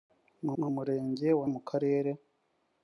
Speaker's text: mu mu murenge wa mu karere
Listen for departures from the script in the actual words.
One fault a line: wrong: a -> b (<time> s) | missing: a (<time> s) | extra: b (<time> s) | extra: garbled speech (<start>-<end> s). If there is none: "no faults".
no faults